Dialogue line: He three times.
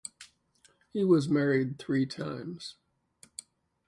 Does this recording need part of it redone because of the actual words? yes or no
yes